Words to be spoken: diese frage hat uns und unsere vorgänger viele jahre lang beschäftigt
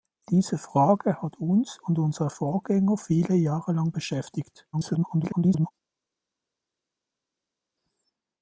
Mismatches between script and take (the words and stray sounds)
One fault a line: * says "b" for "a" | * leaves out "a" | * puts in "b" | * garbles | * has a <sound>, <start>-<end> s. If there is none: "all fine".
* garbles